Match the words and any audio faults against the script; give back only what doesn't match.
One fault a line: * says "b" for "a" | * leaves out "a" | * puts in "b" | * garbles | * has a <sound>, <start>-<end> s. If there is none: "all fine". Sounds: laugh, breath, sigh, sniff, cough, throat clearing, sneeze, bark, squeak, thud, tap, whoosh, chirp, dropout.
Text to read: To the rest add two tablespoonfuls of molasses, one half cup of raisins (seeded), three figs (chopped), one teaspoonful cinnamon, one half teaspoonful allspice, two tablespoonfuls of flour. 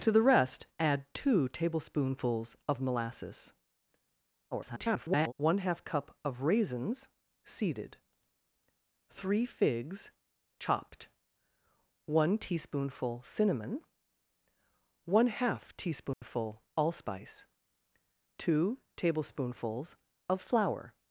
* garbles
* has a dropout, 16.1-16.2 s